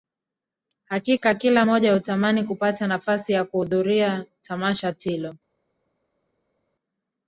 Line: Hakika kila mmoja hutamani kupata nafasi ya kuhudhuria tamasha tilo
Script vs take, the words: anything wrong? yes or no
no